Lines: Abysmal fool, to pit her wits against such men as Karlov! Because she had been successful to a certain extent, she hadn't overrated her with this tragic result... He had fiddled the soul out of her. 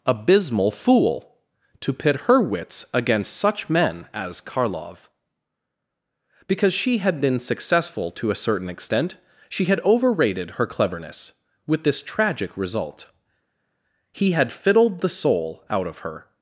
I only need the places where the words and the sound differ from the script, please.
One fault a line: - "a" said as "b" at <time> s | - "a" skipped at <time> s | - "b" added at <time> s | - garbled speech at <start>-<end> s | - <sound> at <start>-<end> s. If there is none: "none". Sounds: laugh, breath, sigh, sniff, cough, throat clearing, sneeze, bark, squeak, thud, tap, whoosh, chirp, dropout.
- "hadn't" said as "had" at 9.6 s
- "cleverness" added at 10.7 s